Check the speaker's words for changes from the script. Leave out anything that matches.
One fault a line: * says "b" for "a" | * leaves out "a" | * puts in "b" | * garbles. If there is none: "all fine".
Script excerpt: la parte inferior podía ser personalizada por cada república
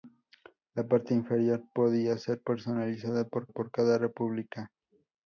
* puts in "por"